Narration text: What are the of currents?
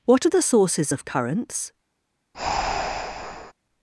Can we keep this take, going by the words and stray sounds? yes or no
no